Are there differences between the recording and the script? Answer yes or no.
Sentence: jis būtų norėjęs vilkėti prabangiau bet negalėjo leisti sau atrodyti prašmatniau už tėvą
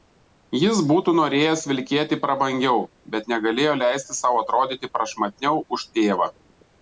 no